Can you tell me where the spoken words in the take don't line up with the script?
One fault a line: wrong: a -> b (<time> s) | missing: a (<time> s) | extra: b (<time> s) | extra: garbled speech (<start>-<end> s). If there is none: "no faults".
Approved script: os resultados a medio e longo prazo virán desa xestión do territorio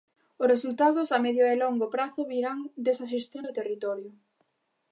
no faults